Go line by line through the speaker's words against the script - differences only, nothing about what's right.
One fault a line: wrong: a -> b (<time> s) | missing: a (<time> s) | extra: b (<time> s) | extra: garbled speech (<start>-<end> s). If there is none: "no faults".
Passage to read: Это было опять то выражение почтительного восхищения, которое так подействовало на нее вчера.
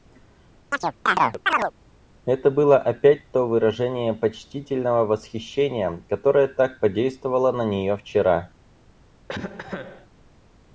no faults